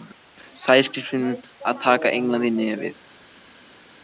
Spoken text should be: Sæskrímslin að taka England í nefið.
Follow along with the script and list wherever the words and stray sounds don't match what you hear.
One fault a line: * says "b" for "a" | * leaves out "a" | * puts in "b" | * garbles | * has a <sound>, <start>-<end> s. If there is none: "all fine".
all fine